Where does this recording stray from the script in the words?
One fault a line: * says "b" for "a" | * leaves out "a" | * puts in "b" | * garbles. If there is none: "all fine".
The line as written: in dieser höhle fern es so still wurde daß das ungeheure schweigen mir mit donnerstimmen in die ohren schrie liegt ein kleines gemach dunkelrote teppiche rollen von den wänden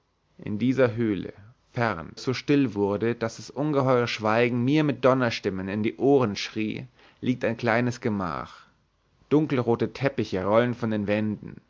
all fine